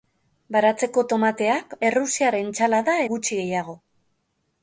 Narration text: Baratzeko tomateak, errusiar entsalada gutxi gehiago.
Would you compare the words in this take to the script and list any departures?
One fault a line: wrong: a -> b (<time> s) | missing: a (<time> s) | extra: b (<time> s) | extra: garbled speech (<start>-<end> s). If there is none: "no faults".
no faults